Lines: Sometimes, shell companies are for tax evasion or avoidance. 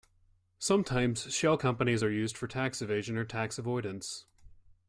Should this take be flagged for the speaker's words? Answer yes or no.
yes